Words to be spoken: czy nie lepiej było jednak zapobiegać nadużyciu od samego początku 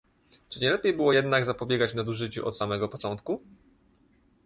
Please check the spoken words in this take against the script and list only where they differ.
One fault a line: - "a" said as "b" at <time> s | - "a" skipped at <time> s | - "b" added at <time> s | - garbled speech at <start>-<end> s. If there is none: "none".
none